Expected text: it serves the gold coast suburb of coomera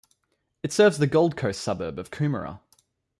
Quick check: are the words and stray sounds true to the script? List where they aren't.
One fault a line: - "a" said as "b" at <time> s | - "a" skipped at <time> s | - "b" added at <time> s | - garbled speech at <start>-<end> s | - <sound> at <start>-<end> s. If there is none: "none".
none